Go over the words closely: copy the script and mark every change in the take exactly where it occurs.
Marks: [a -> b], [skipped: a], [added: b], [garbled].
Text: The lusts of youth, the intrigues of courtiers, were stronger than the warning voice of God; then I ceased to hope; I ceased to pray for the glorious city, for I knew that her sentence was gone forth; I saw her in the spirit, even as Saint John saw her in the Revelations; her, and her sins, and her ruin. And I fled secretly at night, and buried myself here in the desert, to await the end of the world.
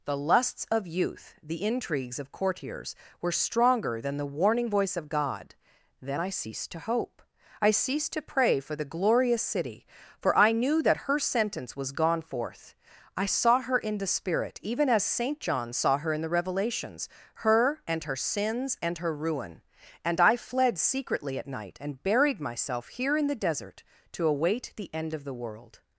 The lusts of youth, the intrigues of courtiers, were stronger than the warning voice of God; then I ceased to hope; I ceased to pray for the glorious city, for I knew that her sentence was gone forth; I saw her in the spirit, even as Saint John saw her in the Revelations; her, and her sins, and her ruin. And I fled secretly at night, and buried myself here in the desert, to await the end of the world.